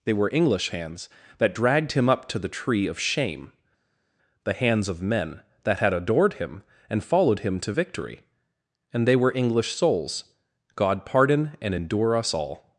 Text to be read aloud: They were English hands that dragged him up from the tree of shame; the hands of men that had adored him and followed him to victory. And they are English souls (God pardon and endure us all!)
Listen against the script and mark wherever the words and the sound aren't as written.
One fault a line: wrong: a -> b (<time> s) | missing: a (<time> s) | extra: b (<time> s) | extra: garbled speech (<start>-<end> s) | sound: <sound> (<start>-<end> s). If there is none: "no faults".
wrong: from -> to (2.3 s)
wrong: are -> were (9.2 s)